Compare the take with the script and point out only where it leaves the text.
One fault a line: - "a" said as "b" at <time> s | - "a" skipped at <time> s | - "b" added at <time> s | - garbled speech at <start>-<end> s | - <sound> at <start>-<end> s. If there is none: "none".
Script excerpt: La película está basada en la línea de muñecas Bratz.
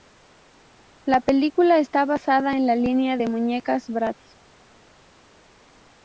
none